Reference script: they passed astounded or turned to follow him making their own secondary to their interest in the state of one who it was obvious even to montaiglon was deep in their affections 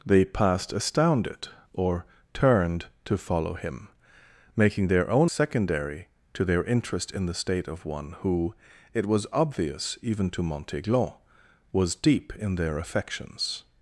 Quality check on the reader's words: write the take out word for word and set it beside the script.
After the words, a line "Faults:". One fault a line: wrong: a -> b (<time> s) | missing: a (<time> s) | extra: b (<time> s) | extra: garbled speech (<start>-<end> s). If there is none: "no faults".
they passed astounded or turned to follow him making their own secondary to their interest in the state of one who it was obvious even to montaiglon was deep in their affections
Faults:
no faults